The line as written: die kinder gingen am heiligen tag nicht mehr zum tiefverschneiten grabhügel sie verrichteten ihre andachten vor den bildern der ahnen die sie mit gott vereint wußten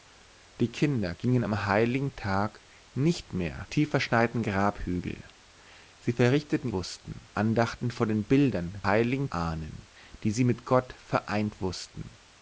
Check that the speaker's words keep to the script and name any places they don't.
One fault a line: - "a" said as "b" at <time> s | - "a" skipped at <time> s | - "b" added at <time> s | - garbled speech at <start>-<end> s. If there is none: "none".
- "zum" skipped at 3.7 s
- "ihre" said as "wußten" at 6.7 s
- "der" said as "heiligen" at 8.8 s